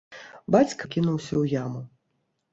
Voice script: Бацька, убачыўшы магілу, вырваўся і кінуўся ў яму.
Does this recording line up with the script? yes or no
no